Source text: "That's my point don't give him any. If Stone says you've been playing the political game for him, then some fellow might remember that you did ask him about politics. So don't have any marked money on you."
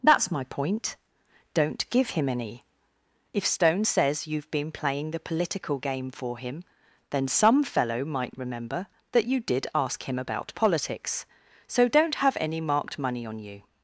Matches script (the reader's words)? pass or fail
pass